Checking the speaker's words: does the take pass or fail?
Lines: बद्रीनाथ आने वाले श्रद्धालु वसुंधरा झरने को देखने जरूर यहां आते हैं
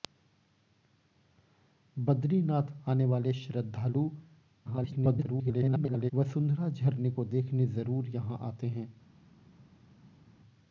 fail